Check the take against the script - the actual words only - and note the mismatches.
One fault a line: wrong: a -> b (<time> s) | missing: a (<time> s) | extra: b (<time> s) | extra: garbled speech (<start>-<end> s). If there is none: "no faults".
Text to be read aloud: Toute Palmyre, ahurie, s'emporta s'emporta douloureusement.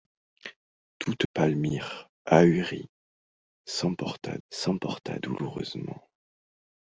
no faults